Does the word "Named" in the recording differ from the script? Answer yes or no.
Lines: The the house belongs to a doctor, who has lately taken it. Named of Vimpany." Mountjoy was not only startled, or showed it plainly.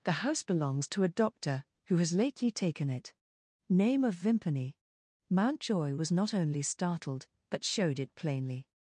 yes